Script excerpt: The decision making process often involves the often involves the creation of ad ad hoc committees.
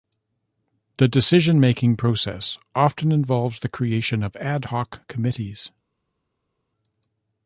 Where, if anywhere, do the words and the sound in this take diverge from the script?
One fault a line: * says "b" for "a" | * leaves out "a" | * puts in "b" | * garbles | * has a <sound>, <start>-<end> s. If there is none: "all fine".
* leaves out "often involves the"
* leaves out "ad"